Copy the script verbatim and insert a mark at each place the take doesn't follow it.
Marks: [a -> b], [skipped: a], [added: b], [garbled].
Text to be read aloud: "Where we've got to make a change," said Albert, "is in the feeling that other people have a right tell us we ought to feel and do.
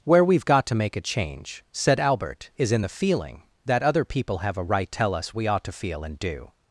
"Where we've got to make a change," said Albert, "is in the feeling that other people have a right tell us we ought to feel and do.